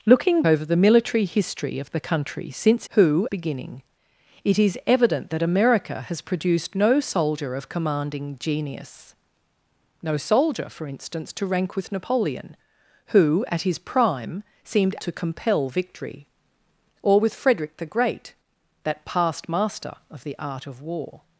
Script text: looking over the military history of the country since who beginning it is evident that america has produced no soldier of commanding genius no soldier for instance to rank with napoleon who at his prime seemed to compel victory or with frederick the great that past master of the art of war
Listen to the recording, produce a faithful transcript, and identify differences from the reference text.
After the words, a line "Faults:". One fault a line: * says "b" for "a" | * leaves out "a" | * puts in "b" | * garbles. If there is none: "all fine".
looking over the military history of the country since who beginning it is evident that america has produced no soldier of commanding genius no soldier for instance to rank with napoleon who at his prime seemed to compel victory or with frederick the great that past master of the art of war
Faults:
all fine